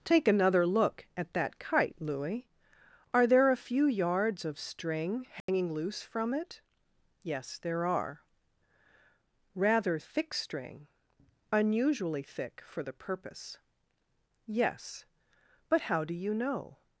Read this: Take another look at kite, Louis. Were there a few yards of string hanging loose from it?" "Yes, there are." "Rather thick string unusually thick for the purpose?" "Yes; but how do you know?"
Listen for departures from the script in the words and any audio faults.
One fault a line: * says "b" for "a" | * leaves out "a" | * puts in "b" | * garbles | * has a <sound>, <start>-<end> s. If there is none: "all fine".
* puts in "that"
* says "Are" for "Were"
* has a dropout, 5.4-5.5 s